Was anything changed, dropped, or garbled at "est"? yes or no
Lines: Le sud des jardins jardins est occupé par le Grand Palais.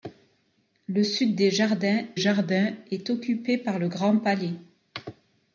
no